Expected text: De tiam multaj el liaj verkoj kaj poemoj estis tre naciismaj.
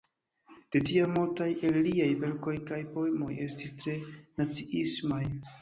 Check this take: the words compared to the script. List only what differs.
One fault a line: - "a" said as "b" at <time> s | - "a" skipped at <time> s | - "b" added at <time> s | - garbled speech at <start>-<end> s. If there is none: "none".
none